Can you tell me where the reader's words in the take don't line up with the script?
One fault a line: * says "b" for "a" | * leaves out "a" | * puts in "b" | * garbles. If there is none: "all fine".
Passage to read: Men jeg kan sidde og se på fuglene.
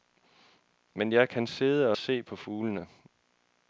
all fine